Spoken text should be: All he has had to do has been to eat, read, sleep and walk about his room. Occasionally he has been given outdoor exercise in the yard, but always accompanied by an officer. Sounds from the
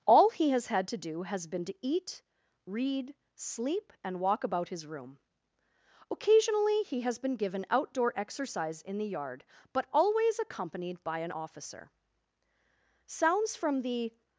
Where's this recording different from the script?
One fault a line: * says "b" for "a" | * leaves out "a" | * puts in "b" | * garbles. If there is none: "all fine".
all fine